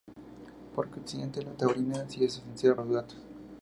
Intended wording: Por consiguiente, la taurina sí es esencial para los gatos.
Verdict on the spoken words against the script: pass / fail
fail